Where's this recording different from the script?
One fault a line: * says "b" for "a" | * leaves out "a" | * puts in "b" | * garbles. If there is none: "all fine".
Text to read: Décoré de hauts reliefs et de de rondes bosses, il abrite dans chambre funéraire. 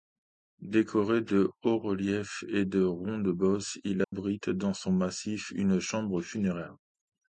* leaves out "de"
* puts in "son massif une"